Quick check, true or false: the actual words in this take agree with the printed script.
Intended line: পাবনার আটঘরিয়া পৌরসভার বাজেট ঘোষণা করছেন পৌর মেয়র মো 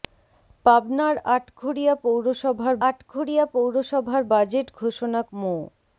false